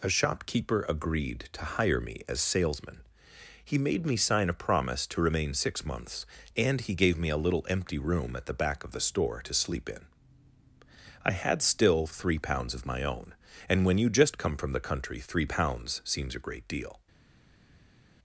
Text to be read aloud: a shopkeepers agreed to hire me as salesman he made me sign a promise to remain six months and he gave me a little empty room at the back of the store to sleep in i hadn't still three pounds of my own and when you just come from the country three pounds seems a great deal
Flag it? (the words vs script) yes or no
yes